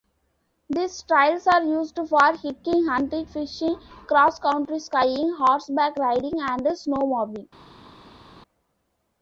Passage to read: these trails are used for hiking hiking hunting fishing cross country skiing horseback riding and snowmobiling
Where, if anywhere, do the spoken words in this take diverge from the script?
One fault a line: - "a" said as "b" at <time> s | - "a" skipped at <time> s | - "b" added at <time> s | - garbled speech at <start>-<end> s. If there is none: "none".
- "hiking" skipped at 2.9 s